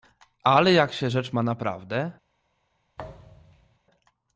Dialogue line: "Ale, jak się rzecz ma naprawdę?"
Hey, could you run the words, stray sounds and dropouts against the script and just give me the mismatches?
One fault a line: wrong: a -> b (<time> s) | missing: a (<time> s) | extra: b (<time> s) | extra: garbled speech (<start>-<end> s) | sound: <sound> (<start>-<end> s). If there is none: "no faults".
sound: thud (3.0-3.8 s)